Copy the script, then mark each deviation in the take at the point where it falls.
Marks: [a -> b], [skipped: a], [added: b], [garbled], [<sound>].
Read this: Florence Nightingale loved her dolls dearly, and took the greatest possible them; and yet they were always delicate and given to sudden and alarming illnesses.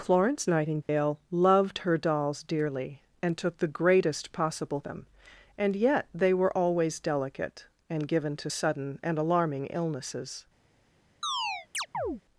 Florence Nightingale [dropout] loved her dolls dearly, and took the greatest possible them; and yet they were always delicate and given to sudden and alarming illnesses. [chirp]